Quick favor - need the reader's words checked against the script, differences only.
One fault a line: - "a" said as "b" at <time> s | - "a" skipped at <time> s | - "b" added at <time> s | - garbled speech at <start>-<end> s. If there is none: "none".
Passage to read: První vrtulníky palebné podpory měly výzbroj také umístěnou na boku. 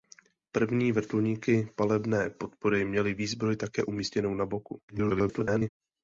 - garbled speech at 4.9-5.7 s